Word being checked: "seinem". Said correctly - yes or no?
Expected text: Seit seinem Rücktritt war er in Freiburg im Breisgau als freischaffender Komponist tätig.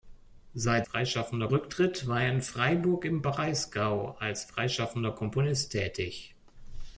no